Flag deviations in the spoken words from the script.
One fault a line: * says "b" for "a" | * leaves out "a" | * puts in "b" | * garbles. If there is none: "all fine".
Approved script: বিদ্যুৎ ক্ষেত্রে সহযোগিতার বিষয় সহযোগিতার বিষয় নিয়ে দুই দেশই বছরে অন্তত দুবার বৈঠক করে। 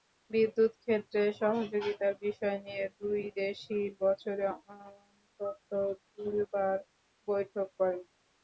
* leaves out "সহযোগিতার বিষয়"